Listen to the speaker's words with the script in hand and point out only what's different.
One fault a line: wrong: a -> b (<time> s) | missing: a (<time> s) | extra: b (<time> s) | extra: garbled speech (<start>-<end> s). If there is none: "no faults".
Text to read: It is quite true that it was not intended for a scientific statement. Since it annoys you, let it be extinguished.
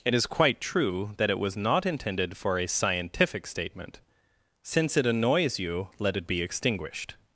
no faults